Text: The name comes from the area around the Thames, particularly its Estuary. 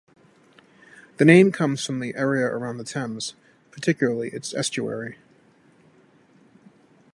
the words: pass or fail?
pass